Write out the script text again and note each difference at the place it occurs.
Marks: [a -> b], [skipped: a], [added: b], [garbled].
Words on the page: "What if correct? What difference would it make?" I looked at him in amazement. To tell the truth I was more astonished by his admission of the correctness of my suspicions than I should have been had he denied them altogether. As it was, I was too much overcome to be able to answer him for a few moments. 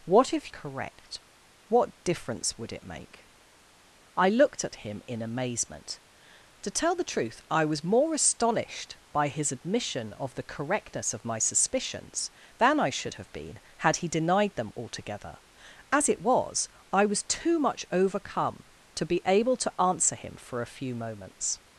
"What if correct? What difference would it make?" I looked at him in amazement. To tell the truth I was more astonished by his admission of the correctness of my suspicions than I should have been had he denied them altogether. As it was, I was too much overcome to be able to answer him for a few moments.